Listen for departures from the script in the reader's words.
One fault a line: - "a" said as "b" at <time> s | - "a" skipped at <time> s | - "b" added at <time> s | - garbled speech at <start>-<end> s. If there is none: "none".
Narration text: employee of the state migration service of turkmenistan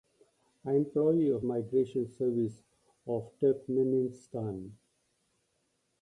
- "the state" skipped at 1.4 s